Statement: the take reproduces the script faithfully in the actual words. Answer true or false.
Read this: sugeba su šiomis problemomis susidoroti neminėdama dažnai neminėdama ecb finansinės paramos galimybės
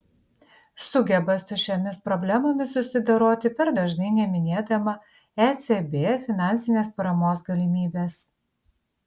false